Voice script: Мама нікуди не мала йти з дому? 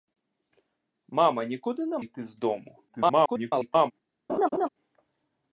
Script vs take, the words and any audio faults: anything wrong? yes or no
yes